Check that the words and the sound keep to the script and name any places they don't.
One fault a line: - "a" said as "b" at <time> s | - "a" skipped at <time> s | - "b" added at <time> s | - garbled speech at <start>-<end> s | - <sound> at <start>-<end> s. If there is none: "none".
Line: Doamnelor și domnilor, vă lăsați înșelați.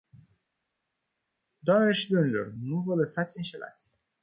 - "nu" added at 2.6 s